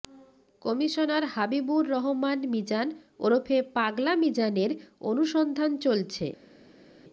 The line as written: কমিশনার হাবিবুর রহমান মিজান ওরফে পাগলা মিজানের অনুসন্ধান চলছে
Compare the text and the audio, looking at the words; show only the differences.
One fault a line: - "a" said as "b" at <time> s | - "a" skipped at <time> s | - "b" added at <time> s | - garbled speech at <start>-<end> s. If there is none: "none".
none